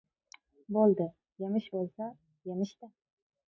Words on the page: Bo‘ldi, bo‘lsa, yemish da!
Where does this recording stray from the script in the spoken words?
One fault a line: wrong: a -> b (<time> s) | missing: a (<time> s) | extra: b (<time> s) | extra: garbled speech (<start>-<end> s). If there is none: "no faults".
extra: yemish (1.4 s)